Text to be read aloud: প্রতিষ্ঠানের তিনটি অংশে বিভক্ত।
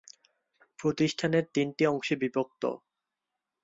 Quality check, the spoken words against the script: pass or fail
pass